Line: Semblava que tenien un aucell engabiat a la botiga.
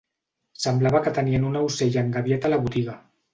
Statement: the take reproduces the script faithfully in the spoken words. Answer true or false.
true